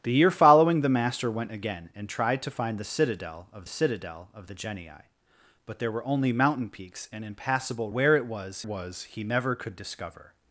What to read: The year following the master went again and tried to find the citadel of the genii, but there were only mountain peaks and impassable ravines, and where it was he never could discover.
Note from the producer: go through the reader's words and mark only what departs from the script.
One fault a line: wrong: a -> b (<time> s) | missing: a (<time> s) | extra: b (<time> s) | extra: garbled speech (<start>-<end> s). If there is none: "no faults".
extra: citadel of (3.7 s)
missing: ravines and (7.9 s)
extra: was (8.6 s)